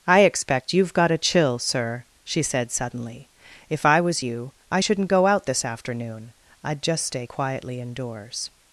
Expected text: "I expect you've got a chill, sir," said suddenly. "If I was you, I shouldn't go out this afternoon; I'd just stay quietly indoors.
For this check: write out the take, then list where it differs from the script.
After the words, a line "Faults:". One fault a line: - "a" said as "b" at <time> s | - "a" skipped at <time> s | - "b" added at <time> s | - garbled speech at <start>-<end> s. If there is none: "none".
"I expect you've got a chill, sir," she said suddenly. "If I was you, I shouldn't go out this afternoon; I'd just stay quietly indoors.
Faults:
- "she" added at 2.2 s